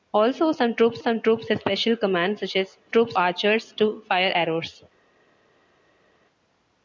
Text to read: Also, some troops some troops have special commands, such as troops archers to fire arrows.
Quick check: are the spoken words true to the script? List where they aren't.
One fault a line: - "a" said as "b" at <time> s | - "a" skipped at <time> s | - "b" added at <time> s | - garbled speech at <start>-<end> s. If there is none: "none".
none